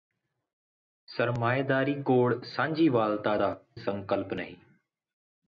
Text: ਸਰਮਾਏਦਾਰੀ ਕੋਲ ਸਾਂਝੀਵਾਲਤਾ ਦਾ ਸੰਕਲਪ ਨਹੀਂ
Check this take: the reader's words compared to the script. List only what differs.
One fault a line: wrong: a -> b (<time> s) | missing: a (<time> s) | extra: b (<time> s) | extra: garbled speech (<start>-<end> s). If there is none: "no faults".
no faults